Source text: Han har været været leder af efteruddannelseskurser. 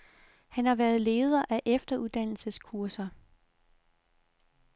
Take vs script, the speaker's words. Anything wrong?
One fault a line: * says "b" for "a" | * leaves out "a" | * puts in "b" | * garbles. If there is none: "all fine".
* leaves out "været"